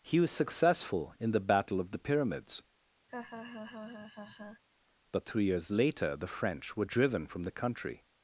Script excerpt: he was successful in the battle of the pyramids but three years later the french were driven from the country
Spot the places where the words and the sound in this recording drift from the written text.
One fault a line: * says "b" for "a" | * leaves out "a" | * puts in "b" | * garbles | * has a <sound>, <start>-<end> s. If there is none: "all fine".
* has a laugh, 3.1-4.6 s